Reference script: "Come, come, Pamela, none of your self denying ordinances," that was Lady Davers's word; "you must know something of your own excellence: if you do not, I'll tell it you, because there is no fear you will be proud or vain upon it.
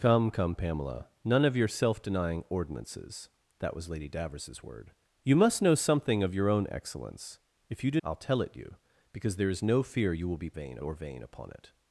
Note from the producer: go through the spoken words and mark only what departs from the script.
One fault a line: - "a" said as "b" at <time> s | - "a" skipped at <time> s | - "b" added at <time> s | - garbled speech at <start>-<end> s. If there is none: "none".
- "not" skipped at 8.0 s
- "proud" said as "vain" at 10.5 s